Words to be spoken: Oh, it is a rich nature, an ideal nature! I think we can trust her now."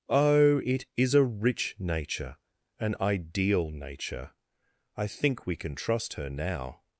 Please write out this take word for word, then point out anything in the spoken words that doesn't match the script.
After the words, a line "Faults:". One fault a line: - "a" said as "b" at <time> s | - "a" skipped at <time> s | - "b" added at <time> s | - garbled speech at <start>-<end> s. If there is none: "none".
Oh, it is a rich nature, an ideal nature! I think we can trust her now."
Faults:
none